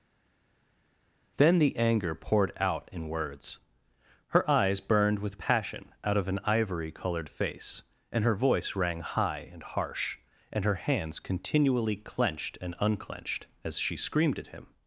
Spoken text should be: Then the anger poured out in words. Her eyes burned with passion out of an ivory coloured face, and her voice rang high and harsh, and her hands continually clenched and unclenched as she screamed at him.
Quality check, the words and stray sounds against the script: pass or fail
pass